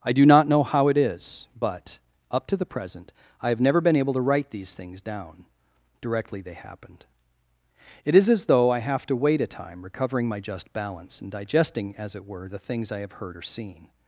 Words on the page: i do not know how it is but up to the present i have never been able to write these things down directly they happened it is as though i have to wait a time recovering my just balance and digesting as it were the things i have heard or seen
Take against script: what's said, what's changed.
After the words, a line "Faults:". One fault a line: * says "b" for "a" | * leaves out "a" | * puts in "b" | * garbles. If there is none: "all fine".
i do not know how it is but up to the present i have never been able to write these things down directly they happened it is as though i have to wait a time recovering my just balance and digesting as it were the things i have heard or seen
Faults:
all fine